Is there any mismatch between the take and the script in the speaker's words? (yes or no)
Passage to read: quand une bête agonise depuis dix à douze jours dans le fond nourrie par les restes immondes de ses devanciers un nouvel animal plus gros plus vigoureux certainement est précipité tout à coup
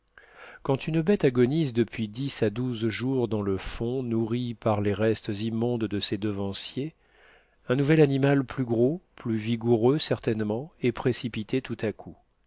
no